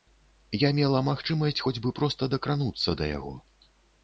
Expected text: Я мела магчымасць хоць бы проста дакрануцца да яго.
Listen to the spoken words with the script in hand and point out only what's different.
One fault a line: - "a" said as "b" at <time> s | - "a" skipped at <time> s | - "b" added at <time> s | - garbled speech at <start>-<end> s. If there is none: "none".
none